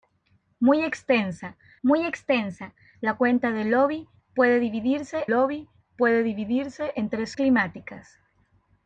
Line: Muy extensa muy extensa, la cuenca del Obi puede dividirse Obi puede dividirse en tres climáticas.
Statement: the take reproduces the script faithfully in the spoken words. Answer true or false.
true